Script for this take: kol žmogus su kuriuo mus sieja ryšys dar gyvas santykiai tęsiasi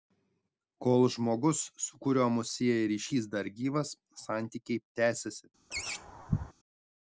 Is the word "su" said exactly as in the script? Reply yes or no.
yes